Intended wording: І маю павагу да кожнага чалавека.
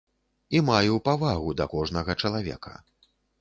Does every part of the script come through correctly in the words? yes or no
yes